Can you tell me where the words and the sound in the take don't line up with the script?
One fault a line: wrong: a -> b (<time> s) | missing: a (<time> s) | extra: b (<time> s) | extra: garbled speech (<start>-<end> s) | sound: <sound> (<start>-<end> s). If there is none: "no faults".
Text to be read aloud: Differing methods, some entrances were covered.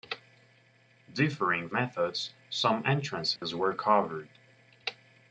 sound: dropout (3.4-3.4 s)